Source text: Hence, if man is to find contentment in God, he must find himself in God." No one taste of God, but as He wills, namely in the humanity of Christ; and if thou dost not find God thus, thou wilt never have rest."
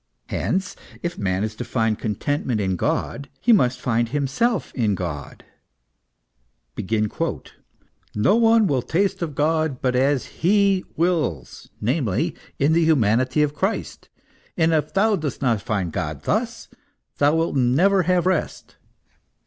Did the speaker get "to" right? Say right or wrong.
right